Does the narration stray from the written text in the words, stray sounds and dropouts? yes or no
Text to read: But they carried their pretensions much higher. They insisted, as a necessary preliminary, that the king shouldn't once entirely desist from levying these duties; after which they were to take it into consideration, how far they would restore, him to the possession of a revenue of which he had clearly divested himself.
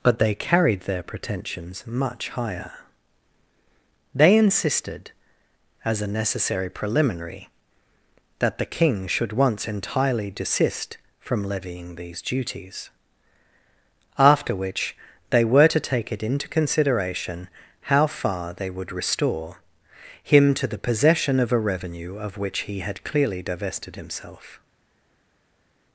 yes